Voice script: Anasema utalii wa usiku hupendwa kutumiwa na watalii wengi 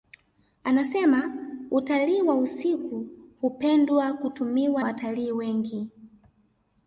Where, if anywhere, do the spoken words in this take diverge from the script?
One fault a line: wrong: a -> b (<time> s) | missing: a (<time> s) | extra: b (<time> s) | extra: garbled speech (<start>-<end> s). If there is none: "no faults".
missing: na (4.8 s)